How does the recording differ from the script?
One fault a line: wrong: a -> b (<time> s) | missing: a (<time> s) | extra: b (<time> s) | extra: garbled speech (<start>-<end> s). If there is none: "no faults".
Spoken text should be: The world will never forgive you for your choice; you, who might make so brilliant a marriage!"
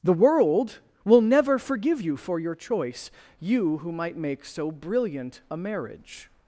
no faults